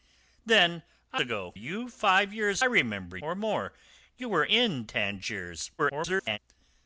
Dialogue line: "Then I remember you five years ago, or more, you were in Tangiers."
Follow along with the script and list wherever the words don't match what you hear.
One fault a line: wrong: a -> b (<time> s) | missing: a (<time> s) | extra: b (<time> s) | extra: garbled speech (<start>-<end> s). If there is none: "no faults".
wrong: remember -> ago (1.2 s)
wrong: ago -> remember (2.6 s)
extra: garbled speech (5.8-6.4 s)